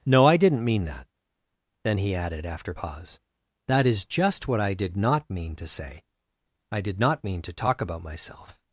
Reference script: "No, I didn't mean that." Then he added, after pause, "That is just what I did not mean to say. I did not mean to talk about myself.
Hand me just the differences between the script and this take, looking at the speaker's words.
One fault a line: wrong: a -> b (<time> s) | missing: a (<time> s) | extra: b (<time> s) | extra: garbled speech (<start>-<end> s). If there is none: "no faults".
no faults